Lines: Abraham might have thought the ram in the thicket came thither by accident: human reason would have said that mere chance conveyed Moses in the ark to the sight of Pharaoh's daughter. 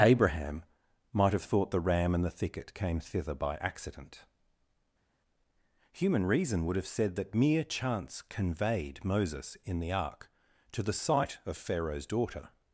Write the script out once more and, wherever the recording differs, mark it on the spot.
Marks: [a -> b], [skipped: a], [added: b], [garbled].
Abraham might have thought the ram [in -> and] the thicket came thither by accident: human reason would have said that mere chance conveyed Moses in the ark to the sight of Pharaoh's daughter.